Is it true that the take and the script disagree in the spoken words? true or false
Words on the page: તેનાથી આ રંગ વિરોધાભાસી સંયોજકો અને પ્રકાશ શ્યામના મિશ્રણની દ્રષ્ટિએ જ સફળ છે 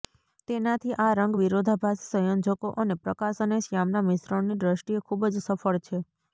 true